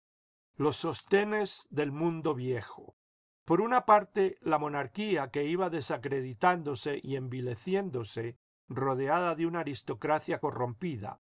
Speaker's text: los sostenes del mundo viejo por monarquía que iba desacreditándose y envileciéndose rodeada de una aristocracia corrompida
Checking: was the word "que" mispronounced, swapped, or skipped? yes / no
no